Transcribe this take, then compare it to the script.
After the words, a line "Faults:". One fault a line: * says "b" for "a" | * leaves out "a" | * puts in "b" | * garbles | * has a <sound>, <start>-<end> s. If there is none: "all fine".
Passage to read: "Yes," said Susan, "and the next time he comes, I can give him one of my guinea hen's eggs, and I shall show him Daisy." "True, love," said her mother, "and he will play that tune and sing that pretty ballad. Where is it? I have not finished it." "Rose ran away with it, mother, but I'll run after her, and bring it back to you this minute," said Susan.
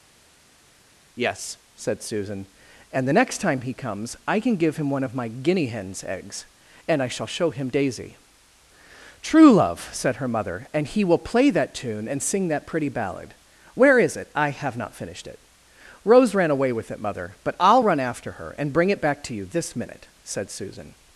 "Yes," said Susan, "and the next time he comes, I can give him one of my guinea hen's eggs, and I shall show him Daisy." "True, love," said her mother, "and he will play that tune and sing that pretty ballad. Where is it? I have not finished it." "Rose ran away with it, mother, but I'll run after her, and bring it back to you this minute," said Susan.
Faults:
all fine